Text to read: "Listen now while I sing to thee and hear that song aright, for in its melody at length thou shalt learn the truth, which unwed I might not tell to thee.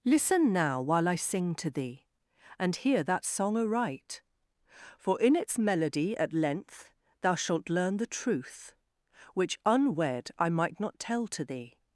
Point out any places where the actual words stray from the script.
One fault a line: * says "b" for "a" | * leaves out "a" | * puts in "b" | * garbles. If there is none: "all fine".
all fine